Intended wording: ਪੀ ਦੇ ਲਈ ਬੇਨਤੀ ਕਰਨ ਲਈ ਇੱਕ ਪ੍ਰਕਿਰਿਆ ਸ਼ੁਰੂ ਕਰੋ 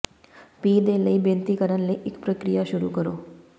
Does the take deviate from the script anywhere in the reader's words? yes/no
no